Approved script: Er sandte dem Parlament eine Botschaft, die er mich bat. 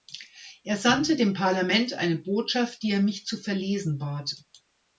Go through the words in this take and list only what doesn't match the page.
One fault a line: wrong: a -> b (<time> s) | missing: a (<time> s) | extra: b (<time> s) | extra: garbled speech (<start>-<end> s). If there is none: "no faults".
extra: zu verlesen (3.2 s)